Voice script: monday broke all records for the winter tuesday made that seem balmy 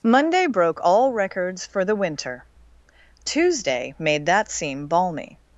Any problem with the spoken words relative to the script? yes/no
no